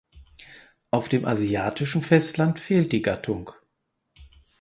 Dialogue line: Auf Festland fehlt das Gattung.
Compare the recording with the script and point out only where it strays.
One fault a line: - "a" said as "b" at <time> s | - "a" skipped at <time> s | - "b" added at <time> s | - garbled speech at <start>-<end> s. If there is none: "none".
- "dem asiatischen" added at 1.1 s
- "das" said as "die" at 2.9 s